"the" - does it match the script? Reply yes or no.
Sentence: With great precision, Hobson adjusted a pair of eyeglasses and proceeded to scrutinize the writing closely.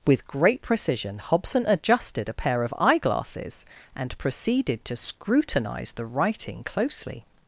yes